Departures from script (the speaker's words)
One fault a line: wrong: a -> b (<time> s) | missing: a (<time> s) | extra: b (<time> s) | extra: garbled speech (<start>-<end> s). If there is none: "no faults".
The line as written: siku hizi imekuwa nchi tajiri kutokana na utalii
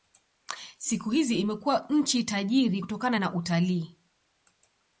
no faults